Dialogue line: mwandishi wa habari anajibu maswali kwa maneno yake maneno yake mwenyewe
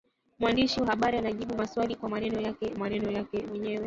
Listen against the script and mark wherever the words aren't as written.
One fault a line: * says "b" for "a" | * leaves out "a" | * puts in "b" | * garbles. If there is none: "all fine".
all fine